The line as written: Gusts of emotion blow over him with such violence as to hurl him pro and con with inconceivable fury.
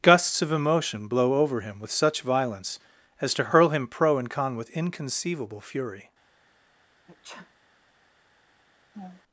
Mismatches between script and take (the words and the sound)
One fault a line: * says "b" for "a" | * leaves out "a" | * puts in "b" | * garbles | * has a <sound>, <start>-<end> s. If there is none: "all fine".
* has a sneeze, 7.1-7.5 s
* has a laugh, 8.9-9.2 s